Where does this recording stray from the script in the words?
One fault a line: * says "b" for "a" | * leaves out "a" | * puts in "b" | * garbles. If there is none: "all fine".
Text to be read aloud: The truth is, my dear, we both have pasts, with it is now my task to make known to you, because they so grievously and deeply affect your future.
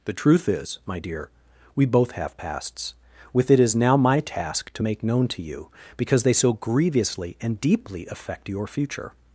all fine